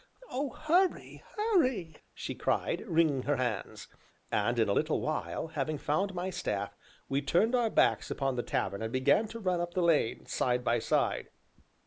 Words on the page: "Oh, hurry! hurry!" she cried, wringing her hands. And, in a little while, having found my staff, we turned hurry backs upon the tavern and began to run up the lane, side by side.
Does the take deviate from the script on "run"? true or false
false